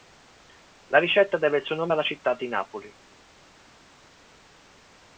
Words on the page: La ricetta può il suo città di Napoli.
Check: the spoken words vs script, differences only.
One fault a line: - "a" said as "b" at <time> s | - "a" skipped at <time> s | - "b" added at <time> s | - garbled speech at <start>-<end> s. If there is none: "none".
- "può" said as "deve" at 1.4 s
- "nome alla" added at 1.8 s